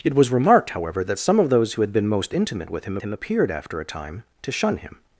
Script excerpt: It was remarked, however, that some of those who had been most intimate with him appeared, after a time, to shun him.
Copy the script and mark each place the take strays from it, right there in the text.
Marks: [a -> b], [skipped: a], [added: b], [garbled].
It was remarked, however, that some of those who had been most intimate with him [added: him] appeared, after a time, to shun him.